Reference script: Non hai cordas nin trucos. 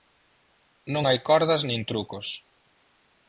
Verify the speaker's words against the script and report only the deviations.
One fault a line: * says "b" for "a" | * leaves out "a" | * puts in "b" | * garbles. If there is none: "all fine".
all fine